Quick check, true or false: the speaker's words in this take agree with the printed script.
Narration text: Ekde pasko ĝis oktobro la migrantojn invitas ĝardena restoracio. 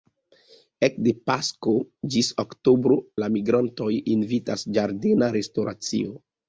true